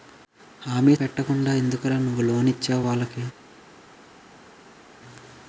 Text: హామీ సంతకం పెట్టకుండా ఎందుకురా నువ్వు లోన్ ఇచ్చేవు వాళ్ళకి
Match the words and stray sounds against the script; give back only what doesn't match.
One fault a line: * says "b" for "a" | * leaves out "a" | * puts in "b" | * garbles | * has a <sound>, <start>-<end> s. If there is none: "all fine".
* leaves out "సంతకం"